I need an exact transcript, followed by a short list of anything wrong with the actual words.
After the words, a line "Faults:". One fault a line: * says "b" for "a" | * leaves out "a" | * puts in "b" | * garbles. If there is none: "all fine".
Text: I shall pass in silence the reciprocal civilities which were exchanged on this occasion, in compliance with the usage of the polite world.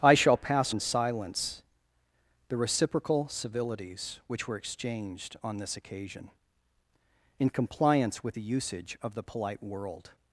I shall pass in silence the reciprocal civilities which were exchanged on this occasion, in compliance with the usage of the polite world.
Faults:
all fine